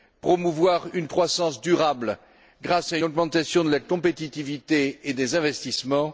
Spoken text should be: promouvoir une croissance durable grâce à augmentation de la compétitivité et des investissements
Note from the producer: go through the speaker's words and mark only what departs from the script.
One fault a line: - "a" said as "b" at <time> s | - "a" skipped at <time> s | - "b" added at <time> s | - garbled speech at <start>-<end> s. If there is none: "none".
none